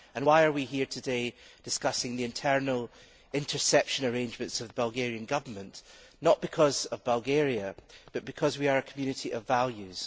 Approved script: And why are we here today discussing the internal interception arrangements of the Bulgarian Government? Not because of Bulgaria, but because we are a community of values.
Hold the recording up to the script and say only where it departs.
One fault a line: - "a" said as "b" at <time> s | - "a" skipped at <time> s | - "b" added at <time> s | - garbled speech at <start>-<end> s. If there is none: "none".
none